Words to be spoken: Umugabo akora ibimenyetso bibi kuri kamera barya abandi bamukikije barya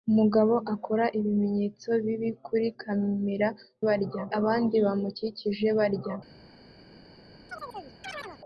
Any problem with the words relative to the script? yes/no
no